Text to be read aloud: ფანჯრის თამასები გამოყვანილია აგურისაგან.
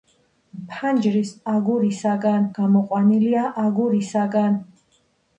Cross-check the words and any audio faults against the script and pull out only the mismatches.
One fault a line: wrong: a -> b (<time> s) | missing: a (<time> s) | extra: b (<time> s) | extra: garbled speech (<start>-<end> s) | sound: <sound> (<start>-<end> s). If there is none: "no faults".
wrong: თამასები -> აგურისაგან (1.5 s)